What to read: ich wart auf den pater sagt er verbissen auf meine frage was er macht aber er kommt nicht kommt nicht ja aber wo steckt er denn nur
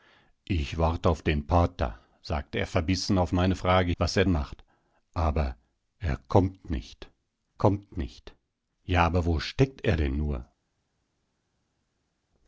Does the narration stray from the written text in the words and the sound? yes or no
no